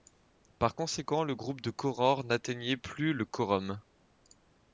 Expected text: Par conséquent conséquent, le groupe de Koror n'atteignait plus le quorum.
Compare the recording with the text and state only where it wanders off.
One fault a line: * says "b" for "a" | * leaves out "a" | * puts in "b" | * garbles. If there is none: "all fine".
* leaves out "conséquent"